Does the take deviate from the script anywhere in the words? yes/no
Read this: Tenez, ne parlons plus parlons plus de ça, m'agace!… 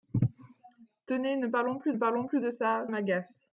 no